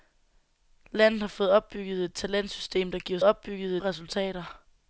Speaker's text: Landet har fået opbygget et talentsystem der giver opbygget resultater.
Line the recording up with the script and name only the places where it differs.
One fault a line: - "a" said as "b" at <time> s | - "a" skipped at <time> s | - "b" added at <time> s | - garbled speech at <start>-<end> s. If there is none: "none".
none